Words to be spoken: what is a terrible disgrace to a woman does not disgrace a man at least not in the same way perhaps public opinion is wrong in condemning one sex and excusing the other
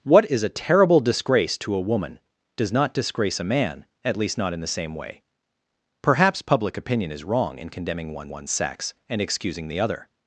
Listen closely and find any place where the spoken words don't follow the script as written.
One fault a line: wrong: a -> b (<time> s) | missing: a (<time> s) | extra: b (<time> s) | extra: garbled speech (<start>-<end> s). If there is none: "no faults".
extra: one (8.3 s)